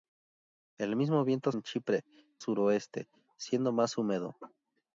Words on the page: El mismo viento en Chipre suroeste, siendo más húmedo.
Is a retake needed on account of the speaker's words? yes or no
no